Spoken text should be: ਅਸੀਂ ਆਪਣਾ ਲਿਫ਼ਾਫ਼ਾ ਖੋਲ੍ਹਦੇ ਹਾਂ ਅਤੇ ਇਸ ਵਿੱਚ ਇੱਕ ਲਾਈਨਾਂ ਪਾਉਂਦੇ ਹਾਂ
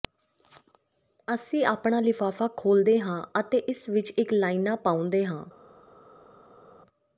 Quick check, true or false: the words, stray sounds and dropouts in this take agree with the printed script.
true